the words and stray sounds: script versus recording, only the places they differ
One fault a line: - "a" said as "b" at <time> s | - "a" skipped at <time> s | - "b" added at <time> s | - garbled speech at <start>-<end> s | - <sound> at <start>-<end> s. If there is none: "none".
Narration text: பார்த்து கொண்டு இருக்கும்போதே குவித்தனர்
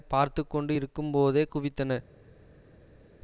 none